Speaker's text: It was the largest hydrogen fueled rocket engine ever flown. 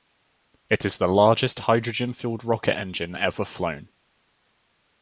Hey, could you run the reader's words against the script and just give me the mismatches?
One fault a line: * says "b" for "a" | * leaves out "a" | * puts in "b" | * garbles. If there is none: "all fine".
* says "is" for "was"